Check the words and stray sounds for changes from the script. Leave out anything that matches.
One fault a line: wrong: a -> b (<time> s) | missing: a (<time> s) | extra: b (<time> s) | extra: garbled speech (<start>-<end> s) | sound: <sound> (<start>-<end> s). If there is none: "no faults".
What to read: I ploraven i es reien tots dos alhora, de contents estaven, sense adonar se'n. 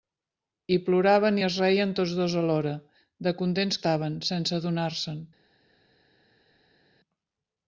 no faults